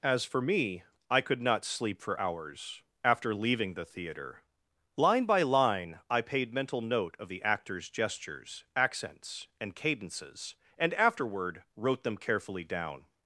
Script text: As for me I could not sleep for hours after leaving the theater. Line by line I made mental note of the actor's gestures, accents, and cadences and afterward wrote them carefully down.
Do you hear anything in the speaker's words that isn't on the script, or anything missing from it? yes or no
yes